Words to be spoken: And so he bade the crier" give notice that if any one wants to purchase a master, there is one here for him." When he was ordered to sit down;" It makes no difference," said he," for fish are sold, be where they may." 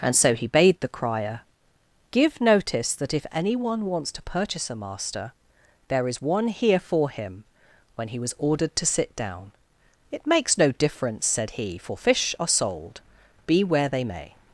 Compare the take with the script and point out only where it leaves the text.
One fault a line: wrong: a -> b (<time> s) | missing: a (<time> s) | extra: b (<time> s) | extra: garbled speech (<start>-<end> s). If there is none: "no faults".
no faults